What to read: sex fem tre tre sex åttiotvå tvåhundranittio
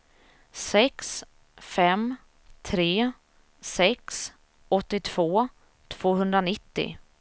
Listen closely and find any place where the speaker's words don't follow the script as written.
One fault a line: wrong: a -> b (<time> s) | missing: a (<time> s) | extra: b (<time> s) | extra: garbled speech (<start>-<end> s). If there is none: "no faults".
missing: tre (3.1 s)